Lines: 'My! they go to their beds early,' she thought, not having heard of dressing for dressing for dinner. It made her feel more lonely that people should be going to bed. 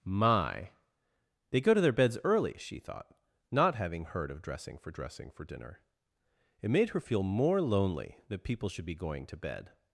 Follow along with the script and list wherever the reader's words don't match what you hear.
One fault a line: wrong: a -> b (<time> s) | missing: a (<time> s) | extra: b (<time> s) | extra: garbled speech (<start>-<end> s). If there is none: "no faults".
no faults